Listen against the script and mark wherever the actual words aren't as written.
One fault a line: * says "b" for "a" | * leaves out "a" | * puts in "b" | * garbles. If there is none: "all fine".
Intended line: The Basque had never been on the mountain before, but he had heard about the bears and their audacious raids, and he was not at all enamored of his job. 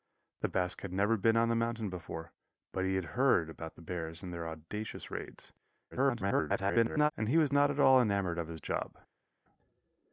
* garbles